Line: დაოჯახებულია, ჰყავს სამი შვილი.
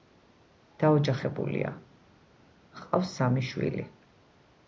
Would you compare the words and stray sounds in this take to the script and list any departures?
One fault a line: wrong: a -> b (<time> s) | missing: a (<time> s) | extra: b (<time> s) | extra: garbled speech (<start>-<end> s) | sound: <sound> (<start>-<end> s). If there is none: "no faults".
no faults